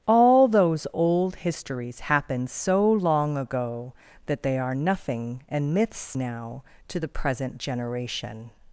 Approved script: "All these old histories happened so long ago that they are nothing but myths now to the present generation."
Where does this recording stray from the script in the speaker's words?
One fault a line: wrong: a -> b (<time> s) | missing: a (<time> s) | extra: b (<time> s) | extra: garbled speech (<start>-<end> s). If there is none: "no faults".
wrong: these -> those (0.5 s)
wrong: but -> and (5.5 s)